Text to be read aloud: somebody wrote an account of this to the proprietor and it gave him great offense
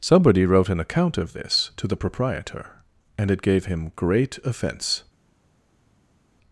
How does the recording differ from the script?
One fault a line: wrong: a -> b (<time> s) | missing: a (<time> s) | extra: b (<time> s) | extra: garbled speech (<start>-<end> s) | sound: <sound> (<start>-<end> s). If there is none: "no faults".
no faults